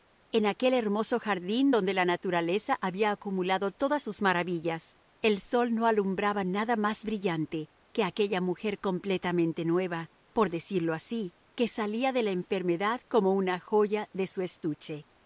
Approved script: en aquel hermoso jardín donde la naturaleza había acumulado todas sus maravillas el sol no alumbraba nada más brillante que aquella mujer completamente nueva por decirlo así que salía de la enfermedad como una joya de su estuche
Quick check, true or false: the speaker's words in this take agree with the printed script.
true